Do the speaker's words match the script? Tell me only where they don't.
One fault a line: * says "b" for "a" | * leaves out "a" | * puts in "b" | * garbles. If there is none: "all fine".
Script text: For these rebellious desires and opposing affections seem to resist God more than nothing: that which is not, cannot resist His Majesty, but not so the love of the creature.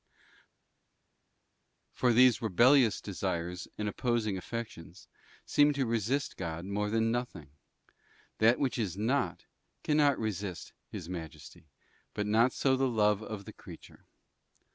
all fine